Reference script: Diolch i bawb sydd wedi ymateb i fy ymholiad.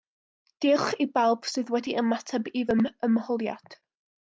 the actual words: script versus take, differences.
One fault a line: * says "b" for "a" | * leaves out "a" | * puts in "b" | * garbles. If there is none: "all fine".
all fine